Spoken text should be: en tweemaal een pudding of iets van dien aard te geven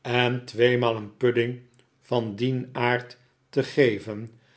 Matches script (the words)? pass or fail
fail